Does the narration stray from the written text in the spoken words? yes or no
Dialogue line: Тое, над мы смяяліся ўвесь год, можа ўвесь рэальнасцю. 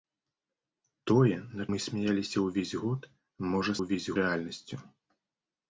no